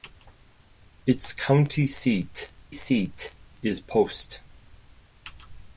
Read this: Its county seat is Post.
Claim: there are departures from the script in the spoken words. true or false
true